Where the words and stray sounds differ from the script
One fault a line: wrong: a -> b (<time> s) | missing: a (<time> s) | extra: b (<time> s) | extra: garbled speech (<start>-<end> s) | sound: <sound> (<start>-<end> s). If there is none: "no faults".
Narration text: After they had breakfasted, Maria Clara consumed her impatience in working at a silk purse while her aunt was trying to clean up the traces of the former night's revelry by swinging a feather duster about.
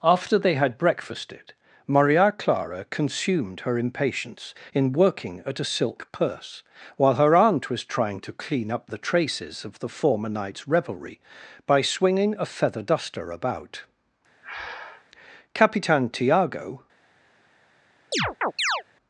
sound: breath (14.4-15.1 s)
extra: Capitan Tiago (15.5 s)
sound: chirp (18.1-18.8 s)